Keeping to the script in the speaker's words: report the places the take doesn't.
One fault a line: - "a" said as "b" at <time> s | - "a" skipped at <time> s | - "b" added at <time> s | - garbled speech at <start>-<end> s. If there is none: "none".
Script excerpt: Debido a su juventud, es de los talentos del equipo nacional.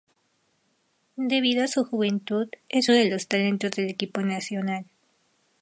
none